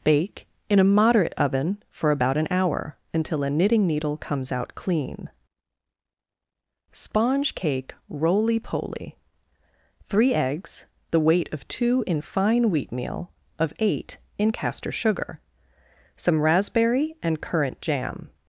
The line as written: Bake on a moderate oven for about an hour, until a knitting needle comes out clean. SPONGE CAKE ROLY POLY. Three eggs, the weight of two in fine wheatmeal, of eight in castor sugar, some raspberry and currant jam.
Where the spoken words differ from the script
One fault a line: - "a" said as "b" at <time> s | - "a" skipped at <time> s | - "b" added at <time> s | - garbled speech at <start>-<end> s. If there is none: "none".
- "on" said as "in" at 0.7 s